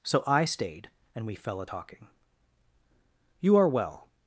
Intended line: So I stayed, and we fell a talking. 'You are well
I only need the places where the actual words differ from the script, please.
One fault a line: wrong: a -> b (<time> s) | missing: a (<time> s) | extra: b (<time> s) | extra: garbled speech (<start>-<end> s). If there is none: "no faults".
no faults